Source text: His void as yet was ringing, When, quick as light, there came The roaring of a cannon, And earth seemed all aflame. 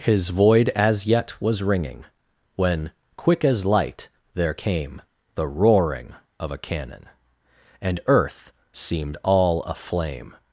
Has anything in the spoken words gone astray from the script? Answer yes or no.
no